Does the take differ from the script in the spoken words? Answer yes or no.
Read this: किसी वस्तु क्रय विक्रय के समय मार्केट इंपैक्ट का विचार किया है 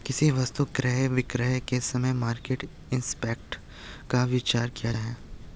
no